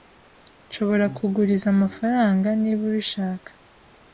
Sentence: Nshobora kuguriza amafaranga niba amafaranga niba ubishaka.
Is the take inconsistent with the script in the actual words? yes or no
yes